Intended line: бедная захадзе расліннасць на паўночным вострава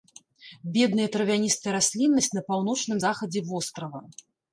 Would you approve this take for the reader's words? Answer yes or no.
no